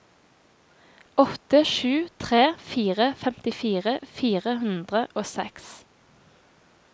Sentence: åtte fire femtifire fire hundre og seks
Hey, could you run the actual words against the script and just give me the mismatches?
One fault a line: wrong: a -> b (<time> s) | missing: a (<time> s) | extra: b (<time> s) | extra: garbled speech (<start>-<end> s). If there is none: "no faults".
extra: sju tre (1.6 s)